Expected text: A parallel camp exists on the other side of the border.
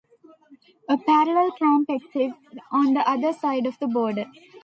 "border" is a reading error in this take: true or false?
false